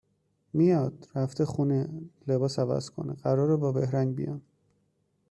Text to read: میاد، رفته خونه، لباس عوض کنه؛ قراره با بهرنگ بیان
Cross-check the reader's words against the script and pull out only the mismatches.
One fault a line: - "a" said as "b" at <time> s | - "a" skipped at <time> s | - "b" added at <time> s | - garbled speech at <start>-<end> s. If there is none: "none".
none